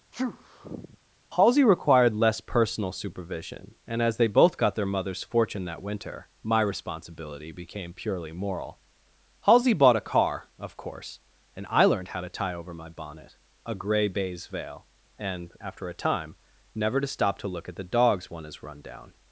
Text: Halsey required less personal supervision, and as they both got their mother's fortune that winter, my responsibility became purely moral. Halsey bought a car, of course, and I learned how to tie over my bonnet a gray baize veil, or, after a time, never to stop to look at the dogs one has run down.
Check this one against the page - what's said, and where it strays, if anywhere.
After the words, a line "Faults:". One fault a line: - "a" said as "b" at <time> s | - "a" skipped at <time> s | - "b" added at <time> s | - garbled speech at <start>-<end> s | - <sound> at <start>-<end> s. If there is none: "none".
Halsey required less personal supervision, and as they both got their mother's fortune that winter, my responsibility became purely moral. Halsey bought a car, of course, and I learned how to tie over my bonnet a gray baize veil, and, after a time, never to stop to look at the dogs one has run down.
Faults:
- sneeze at 0.1-1.0 s
- "or" said as "and" at 15.2 s